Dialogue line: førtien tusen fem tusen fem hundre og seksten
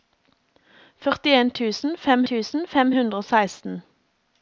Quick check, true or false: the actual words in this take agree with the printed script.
true